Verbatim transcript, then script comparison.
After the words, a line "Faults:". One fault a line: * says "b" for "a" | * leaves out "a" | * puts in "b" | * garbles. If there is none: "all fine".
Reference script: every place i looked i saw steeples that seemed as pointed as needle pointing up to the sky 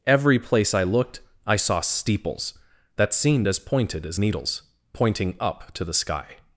every place i looked i saw steeples that seemed as pointed as needles pointing up to the sky
Faults:
* says "needles" for "needle"